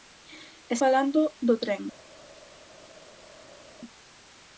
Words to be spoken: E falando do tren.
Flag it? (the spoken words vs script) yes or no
no